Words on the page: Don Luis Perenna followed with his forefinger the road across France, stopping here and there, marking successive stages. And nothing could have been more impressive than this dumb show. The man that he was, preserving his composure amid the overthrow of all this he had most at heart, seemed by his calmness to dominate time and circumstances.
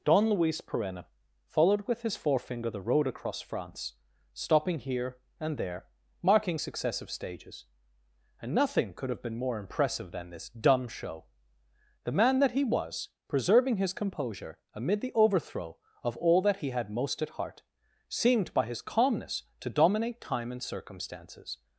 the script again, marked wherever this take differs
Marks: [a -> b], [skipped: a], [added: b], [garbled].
Don Luis Perenna followed with his forefinger the road across France, stopping here and there, marking successive stages. And nothing could have been more impressive than this dumb show. The man that he was, preserving his composure amid the overthrow of all [this -> that] he had most at heart, seemed by his calmness to dominate time and circumstances.